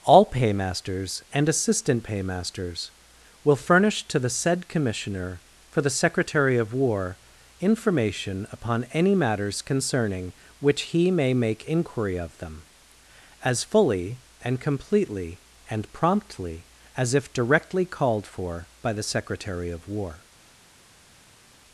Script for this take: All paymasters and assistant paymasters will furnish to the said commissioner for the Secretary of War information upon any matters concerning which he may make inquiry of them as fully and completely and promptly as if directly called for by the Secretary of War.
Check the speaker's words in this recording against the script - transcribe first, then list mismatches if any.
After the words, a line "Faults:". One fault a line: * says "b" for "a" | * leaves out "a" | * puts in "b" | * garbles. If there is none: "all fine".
All paymasters and assistant paymasters will furnish to the said commissioner for the Secretary of War information upon any matters concerning which he may make inquiry of them as fully and completely and promptly as if directly called for by the Secretary of War.
Faults:
all fine